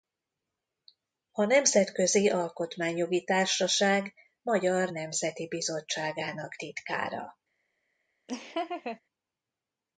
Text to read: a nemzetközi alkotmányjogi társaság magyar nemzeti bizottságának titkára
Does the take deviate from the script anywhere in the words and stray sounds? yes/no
yes